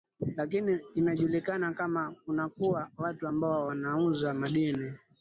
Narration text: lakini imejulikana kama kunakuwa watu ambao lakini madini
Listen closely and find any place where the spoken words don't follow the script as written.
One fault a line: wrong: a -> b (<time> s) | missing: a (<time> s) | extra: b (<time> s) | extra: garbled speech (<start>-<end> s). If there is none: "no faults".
wrong: lakini -> wanauza (3.7 s)